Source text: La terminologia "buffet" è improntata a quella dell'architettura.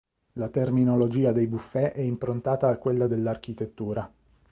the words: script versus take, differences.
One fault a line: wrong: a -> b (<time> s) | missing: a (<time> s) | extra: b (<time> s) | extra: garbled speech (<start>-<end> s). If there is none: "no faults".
extra: dei (1.3 s)